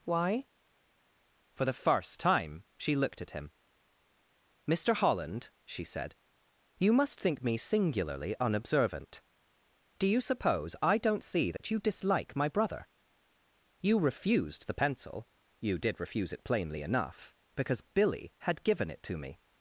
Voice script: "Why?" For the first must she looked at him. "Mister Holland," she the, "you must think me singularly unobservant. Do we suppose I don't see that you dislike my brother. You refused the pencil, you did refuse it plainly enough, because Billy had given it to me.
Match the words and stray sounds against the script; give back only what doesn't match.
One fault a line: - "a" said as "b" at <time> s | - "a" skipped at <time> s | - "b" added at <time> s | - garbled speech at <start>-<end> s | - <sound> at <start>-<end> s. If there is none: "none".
- "must" said as "time" at 2.2 s
- "the" said as "said" at 5.8 s
- "we" said as "you" at 10.1 s
- dropout at 11.6-11.6 s